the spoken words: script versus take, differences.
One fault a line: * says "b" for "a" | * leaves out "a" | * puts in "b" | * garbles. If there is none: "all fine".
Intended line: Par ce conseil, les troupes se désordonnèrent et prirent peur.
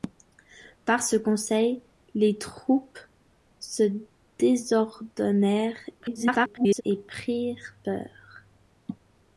* garbles